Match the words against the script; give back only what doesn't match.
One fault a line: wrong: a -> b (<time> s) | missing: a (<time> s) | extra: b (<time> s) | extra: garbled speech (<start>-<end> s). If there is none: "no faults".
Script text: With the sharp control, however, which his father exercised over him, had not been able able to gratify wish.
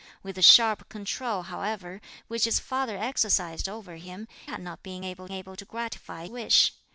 no faults